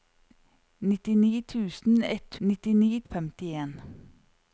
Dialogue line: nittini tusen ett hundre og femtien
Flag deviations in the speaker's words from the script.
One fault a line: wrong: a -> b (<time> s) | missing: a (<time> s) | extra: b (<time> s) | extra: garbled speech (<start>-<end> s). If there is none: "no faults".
wrong: hundre -> nittini (2.5 s)